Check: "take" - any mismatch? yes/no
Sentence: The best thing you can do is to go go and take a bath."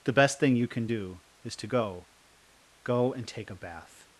no